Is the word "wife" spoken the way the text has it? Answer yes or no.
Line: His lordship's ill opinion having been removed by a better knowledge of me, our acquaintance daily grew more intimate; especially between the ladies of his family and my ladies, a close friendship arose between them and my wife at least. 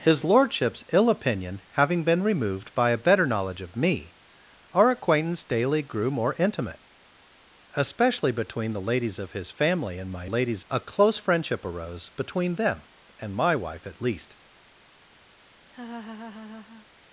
yes